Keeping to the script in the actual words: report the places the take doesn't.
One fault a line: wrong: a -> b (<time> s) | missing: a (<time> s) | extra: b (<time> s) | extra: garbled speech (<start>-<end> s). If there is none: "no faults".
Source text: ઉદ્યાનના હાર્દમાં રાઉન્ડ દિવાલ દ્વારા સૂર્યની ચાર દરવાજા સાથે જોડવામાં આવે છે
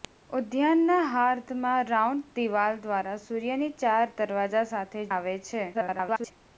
missing: જોડવામાં (5.0 s)
extra: garbled speech (5.7-6.3 s)